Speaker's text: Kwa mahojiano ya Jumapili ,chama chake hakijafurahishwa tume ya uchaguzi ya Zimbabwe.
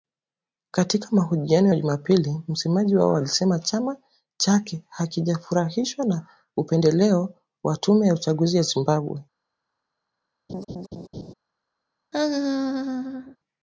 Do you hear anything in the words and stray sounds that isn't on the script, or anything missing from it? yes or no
yes